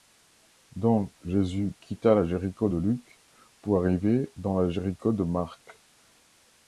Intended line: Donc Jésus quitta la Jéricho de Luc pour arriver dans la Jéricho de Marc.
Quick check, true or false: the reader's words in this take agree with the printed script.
true